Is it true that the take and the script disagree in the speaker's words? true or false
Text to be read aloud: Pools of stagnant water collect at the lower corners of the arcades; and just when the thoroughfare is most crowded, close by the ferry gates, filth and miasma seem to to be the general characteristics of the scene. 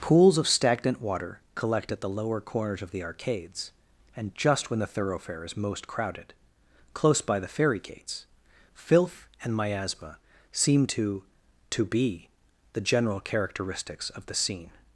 false